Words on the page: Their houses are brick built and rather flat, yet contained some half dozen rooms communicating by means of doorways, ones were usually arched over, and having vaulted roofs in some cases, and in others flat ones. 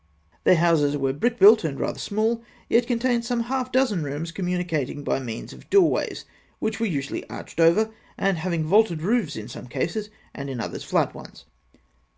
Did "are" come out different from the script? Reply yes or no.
yes